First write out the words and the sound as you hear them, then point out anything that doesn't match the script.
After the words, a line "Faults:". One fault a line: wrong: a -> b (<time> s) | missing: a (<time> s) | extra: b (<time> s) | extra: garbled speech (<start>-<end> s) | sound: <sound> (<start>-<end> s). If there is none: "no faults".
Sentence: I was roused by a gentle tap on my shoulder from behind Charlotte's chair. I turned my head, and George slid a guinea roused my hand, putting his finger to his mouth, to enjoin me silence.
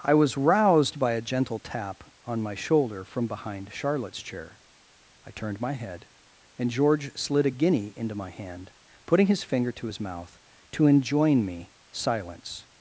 I was roused by a gentle tap on my shoulder from behind Charlotte's chair. I turned my head, and George slid a guinea into my hand, putting his finger to his mouth, to enjoin me silence.
Faults:
wrong: roused -> into (8.0 s)